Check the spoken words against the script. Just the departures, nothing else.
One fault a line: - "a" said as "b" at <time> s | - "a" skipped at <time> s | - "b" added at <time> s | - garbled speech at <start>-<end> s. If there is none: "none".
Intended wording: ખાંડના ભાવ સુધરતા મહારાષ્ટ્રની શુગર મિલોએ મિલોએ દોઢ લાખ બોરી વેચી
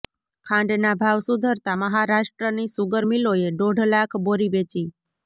- "મિલોએ" skipped at 3.5 s